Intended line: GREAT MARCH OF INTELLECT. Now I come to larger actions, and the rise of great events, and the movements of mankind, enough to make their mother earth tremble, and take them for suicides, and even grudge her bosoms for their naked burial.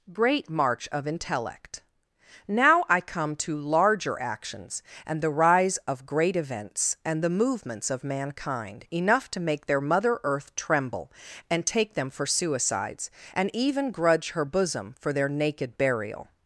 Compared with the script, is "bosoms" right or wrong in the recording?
wrong